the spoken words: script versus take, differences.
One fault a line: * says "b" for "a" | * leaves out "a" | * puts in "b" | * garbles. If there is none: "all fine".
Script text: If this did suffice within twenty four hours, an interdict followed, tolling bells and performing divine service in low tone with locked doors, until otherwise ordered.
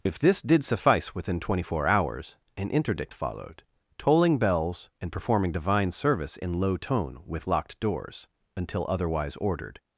all fine